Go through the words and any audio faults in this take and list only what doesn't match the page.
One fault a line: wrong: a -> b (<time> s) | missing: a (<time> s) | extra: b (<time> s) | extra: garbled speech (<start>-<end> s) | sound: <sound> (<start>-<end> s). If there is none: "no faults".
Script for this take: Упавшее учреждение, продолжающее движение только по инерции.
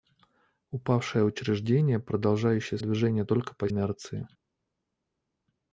no faults